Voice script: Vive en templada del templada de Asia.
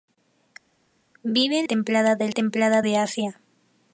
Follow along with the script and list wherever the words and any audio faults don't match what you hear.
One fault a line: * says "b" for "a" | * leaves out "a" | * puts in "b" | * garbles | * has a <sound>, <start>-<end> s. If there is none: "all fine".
all fine